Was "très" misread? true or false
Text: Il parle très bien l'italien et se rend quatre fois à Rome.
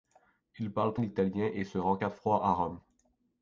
true